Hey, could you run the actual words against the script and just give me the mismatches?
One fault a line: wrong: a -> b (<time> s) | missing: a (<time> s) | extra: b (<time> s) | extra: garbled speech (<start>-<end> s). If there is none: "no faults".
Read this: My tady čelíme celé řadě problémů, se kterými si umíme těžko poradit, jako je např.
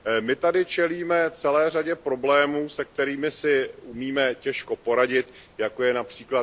no faults